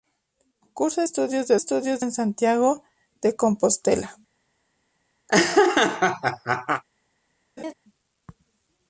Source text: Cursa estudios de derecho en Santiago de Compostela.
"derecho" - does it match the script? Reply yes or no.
no